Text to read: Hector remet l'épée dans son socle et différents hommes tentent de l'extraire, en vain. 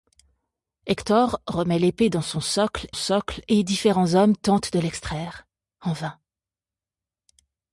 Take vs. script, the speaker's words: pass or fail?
fail